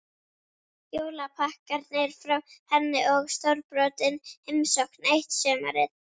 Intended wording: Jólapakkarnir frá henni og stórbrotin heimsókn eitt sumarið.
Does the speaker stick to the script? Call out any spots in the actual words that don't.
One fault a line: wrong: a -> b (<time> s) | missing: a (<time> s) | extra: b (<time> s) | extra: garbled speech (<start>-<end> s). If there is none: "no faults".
no faults